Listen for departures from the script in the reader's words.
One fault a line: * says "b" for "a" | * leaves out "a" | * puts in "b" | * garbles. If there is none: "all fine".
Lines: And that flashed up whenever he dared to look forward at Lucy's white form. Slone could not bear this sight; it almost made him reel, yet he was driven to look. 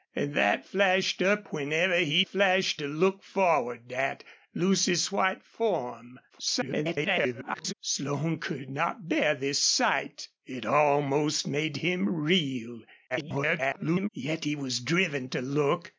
* says "flashed" for "dared"
* garbles
* garbles